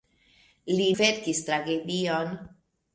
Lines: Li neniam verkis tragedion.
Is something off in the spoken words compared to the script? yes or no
yes